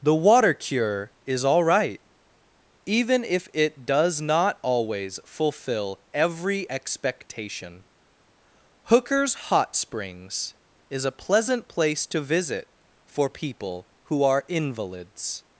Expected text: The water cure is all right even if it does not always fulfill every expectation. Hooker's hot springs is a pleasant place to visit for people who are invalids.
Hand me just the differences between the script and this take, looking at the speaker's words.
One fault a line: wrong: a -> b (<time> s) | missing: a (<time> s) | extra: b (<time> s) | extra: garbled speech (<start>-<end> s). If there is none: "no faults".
no faults